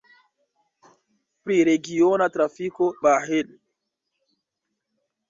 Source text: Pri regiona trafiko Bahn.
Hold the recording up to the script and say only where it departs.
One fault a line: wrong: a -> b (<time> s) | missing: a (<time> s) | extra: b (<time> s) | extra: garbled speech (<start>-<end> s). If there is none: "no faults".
no faults